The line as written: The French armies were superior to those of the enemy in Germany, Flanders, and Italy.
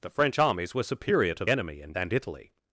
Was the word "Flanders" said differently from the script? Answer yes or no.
yes